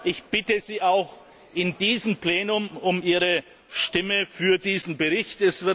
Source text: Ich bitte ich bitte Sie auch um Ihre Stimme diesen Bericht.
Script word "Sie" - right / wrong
wrong